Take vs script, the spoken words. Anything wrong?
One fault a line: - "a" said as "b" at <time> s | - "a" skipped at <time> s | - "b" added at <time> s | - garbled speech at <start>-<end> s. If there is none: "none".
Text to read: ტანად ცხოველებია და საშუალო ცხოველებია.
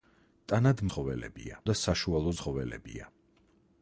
none